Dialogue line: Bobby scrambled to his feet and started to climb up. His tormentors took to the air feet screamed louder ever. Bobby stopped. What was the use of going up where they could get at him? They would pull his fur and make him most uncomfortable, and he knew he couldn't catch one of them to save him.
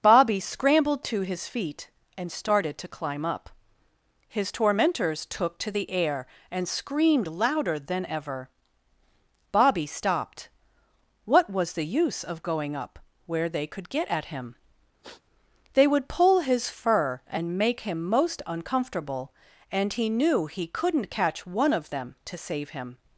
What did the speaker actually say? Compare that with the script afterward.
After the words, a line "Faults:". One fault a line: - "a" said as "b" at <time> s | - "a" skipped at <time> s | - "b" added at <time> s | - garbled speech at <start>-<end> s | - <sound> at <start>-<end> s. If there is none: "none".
Bobby scrambled to his feet and started to climb up. His tormentors took to the air and screamed louder than ever. Bobby stopped. What was the use of going up where they could get at him? They would pull his fur and make him most uncomfortable, and he knew he couldn't catch one of them to save him.
Faults:
- "feet" said as "and" at 6.5 s
- "than" added at 7.8 s
- sniff at 15.0-15.2 s